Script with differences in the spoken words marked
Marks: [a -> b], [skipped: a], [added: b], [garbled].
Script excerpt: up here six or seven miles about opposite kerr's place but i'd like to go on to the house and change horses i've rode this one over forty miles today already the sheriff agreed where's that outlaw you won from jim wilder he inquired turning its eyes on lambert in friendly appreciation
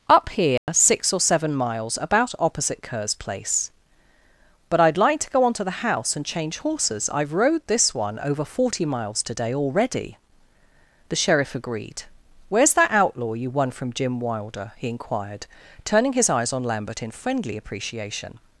up here six or seven miles about opposite kerr's place but i'd like to go on to the house and change horses i've rode this one over forty miles today already the sheriff agreed where's that outlaw you won from jim wilder he inquired turning [its -> his] eyes on lambert in friendly appreciation